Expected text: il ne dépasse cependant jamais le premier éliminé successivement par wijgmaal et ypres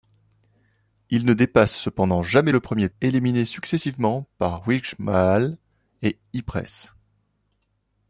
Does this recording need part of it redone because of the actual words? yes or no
no